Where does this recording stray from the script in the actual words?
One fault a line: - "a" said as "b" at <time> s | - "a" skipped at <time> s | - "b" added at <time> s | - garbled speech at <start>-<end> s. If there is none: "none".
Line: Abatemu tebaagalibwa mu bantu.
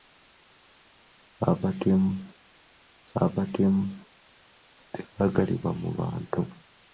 - "abatemu" added at 3.2 s